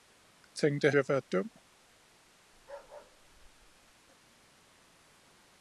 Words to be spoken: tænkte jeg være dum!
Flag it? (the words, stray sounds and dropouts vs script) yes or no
yes